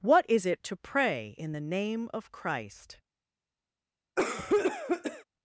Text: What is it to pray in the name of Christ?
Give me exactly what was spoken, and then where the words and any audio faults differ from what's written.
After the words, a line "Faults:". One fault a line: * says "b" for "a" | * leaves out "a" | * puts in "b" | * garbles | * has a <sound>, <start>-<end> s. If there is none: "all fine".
What is it to pray in the name of Christ?
Faults:
* has a cough, 4.2-5.2 s